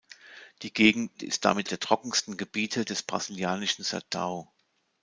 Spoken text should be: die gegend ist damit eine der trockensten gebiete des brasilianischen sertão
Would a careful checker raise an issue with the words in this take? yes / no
yes